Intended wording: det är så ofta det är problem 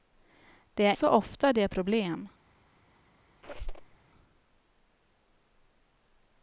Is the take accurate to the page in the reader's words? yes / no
yes